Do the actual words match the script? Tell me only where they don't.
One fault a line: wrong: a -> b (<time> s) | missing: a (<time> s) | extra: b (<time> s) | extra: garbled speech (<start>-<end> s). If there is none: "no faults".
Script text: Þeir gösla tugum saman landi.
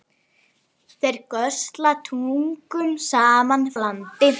no faults